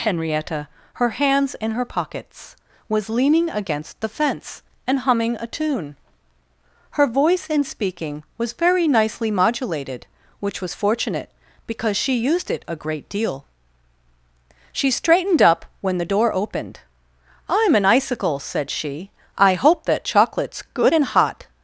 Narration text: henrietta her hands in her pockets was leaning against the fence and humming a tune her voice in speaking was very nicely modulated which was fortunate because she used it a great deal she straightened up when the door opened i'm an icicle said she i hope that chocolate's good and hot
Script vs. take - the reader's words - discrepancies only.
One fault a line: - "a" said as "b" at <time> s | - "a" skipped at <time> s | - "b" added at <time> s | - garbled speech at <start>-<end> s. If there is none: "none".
none